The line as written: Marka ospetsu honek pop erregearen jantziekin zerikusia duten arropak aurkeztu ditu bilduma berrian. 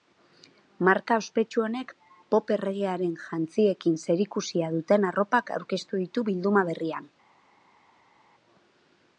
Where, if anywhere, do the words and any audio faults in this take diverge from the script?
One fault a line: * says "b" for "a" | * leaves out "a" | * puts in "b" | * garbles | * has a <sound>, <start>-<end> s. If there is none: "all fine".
all fine